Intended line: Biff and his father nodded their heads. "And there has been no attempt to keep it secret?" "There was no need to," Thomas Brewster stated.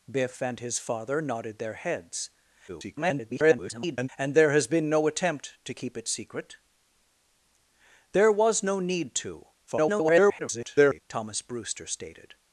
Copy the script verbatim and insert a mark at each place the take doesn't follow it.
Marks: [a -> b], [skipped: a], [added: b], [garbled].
Biff and his father nodded their heads. [garbled] "And there has been no attempt to keep it secret?" "There was no need to," [garbled] Thomas Brewster stated.